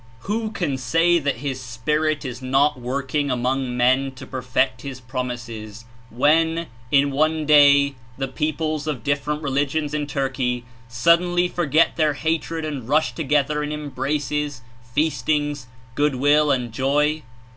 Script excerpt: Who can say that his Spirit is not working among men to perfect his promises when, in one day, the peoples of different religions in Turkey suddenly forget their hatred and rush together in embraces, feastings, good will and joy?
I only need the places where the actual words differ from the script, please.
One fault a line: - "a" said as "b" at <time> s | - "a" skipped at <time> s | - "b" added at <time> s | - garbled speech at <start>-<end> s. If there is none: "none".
none